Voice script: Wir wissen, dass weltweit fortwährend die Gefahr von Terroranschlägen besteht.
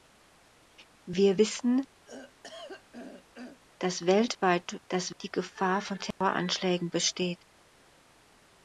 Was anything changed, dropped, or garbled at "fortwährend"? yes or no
yes